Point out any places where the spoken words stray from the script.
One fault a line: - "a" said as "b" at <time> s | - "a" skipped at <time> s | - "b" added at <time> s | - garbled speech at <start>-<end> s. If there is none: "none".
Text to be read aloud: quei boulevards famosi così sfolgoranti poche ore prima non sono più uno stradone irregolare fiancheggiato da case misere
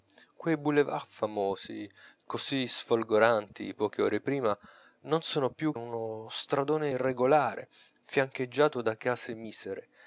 none